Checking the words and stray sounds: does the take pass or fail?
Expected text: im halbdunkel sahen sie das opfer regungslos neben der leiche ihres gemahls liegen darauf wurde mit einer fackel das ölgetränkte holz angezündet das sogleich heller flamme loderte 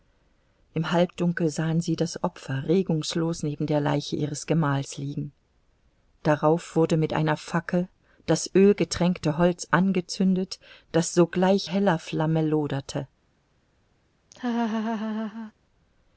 fail